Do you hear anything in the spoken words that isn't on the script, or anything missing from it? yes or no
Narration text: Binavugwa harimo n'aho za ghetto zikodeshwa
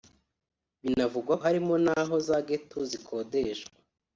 no